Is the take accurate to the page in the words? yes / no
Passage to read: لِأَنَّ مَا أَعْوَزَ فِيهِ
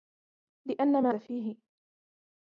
no